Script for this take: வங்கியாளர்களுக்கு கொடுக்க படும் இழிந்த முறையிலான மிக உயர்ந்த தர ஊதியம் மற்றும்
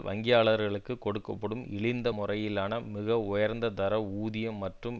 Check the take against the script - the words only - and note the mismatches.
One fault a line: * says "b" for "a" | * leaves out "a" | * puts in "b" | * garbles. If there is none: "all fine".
all fine